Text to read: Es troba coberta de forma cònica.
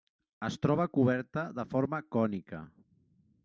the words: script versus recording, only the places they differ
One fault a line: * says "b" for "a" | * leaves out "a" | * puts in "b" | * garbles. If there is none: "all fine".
all fine